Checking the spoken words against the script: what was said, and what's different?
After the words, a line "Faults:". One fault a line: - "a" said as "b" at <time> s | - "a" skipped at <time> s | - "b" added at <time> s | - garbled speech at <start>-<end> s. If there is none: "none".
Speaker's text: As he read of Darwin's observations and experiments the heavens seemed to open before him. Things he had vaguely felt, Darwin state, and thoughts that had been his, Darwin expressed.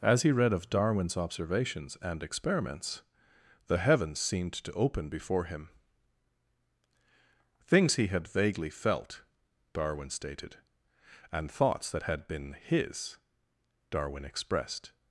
As he read of Darwin's observations and experiments the heavens seemed to open before him. Things he had vaguely felt, Darwin stated, and thoughts that had been his, Darwin expressed.
Faults:
- "state" said as "stated" at 10.1 s